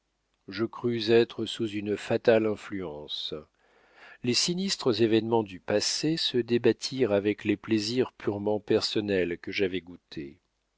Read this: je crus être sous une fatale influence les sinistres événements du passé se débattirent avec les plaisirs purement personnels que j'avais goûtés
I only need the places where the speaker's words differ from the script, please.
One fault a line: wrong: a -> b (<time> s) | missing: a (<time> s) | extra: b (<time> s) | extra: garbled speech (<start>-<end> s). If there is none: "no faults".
no faults